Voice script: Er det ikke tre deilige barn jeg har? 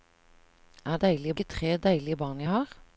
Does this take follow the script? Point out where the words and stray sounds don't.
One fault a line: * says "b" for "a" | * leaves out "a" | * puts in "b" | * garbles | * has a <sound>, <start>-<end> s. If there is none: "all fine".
* says "deilige" for "det"